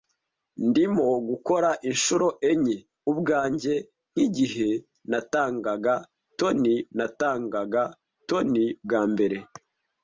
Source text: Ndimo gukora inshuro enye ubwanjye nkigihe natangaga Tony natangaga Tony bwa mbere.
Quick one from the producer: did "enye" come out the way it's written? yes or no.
yes